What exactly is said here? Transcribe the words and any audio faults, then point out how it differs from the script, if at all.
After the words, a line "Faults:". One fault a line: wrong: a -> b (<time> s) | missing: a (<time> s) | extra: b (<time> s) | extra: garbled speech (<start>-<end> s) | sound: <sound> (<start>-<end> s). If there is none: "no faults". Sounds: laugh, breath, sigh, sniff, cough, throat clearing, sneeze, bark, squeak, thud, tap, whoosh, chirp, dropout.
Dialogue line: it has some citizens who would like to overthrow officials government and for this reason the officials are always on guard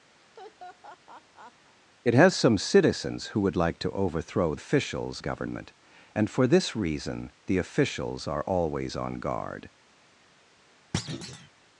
it has some citizens who would like to overthrow officials government and for this reason the officials are always on guard
Faults:
sound: laugh (0.2-1.8 s)
sound: thud (10.9-11.5 s)